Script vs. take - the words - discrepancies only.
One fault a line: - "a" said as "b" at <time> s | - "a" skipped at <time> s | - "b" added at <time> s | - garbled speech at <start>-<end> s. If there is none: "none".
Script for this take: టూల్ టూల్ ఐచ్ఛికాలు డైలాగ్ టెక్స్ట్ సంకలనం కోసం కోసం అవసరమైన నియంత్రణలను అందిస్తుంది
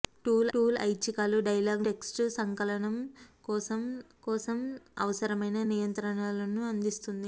none